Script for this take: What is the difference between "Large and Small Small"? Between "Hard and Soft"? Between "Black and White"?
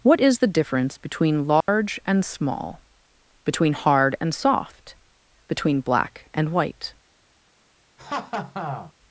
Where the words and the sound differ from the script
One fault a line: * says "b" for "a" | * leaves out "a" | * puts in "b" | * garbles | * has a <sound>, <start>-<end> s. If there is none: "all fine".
* has a dropout, 1.6-1.7 s
* leaves out "Small"
* has a laugh, 8.0-8.9 s